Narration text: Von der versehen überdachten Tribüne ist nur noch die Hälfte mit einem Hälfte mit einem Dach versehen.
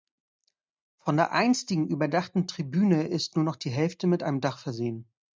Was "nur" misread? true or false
false